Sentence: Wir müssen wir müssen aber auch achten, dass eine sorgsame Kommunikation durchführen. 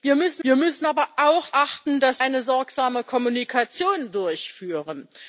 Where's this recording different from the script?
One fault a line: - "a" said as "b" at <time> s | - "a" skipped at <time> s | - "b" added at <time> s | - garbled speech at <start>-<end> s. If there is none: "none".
none